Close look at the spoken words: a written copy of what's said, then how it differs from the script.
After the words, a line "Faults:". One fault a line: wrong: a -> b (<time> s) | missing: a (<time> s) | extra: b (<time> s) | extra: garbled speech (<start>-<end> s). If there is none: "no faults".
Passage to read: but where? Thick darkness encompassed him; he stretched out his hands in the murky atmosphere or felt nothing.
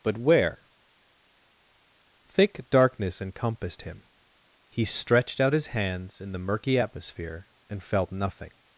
but where? Thick darkness encompassed him; he stretched out his hands in the murky atmosphere and felt nothing.
Faults:
wrong: or -> and (7.7 s)